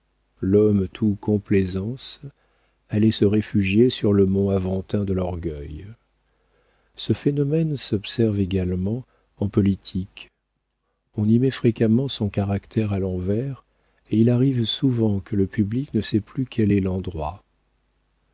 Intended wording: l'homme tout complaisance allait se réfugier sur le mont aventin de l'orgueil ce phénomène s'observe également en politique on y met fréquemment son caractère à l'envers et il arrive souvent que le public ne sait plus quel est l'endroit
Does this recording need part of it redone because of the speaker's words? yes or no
no